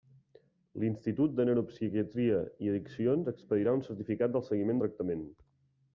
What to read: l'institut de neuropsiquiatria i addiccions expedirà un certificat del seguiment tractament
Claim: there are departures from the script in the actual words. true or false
false